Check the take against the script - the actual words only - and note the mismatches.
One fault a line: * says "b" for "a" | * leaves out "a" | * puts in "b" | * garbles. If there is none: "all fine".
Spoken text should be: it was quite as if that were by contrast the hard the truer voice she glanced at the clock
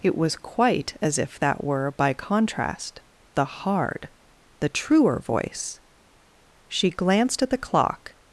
all fine